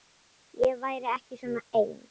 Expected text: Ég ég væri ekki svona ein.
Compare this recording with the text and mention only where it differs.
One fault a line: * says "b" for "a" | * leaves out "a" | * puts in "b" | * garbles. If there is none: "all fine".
* leaves out "ég"